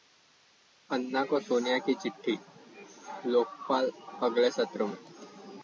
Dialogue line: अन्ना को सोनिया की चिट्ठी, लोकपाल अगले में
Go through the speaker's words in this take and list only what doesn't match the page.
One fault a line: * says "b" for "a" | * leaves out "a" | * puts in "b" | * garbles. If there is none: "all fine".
* puts in "सत्र"